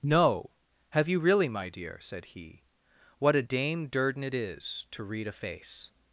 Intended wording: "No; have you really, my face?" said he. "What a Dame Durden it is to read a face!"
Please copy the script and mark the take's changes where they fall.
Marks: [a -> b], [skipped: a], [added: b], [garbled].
"No; have you really, my [face?" -> dear] said he. "What a Dame Durden it is to read a face!"